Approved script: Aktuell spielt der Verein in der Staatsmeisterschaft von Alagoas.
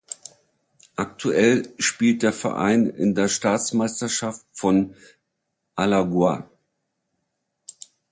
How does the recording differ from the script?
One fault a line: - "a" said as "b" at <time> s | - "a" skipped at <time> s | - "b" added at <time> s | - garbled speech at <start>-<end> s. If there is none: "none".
none